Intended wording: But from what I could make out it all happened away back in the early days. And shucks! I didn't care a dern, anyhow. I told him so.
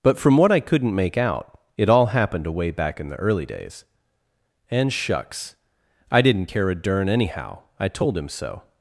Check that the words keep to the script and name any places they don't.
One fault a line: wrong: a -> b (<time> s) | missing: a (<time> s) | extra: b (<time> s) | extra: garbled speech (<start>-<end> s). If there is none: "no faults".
wrong: could -> couldn't (0.6 s)